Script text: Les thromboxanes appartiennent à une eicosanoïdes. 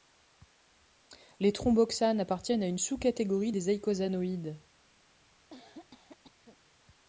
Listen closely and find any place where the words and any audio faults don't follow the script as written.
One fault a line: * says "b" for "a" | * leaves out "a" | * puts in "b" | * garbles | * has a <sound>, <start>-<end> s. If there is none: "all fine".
* puts in "sous catégorie des"
* has a cough, 5.5-6.6 s